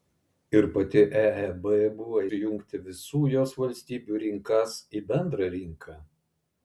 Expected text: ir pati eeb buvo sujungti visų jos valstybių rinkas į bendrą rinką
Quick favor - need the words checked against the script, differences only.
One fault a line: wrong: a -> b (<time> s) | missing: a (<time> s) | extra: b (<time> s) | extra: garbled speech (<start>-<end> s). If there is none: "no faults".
no faults